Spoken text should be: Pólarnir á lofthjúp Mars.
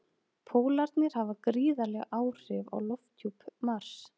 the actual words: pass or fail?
fail